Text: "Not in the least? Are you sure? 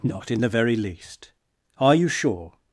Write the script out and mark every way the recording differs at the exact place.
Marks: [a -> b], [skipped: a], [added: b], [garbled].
"Not in the [added: very] least? Are you sure?